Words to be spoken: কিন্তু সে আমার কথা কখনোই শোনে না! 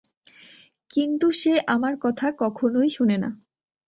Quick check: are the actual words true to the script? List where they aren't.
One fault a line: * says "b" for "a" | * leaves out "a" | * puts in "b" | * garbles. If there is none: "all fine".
all fine